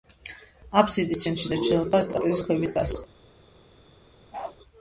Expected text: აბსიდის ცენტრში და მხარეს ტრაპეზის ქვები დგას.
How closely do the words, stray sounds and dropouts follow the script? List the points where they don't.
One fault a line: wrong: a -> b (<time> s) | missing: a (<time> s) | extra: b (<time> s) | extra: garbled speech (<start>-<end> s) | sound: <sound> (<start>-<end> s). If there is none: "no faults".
extra: ჩრდილოეთ (1.6 s)
sound: bark (4.3-4.6 s)